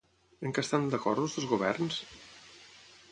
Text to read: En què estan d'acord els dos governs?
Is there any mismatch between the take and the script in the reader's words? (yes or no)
no